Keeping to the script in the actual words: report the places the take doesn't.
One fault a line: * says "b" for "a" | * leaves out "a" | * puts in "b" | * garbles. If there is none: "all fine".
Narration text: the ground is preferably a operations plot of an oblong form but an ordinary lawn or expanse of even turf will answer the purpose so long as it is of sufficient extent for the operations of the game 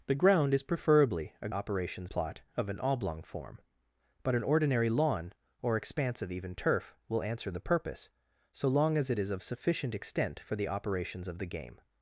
all fine